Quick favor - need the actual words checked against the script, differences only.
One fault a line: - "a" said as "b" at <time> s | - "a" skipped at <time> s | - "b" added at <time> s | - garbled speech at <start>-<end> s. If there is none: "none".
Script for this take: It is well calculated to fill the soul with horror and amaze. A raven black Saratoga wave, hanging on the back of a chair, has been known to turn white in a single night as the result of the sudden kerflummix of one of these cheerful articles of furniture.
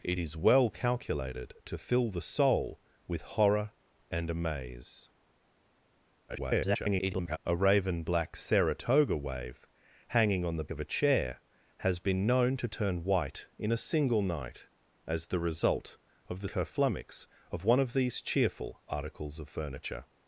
- garbled speech at 6.3-7.4 s
- "back" skipped at 10.7 s
- "sudden" skipped at 16.5 s